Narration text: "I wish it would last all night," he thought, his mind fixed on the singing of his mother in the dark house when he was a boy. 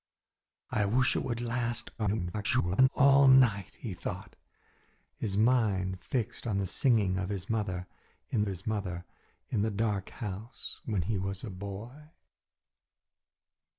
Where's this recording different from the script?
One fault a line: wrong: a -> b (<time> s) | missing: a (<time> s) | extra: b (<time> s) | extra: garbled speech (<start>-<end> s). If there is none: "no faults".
extra: garbled speech (2.0-2.9 s)
extra: his mother in (8.5 s)